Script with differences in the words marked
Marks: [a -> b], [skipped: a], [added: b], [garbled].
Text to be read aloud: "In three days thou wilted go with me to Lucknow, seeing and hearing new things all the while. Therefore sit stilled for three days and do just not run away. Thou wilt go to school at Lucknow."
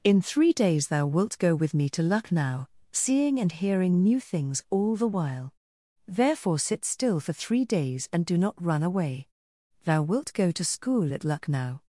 "In three days thou [wilted -> wilt] go with me to Lucknow, seeing and hearing new things all the while. Therefore sit [stilled -> still] for three days and do [skipped: just] not run away. Thou wilt go to school at Lucknow."